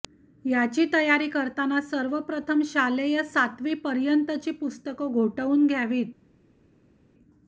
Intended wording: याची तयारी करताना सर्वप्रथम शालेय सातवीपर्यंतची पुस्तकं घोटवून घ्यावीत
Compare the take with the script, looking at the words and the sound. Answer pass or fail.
pass